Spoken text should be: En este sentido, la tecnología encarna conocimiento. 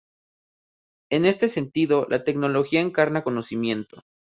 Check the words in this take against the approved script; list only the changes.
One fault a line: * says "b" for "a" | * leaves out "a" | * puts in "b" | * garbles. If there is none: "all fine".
all fine